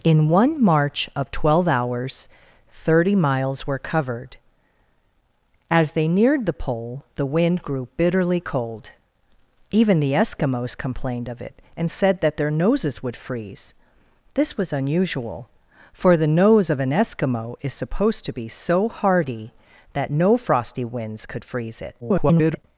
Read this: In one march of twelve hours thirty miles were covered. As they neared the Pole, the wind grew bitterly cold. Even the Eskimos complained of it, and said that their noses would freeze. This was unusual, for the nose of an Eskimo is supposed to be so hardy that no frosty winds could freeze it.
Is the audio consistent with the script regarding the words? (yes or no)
no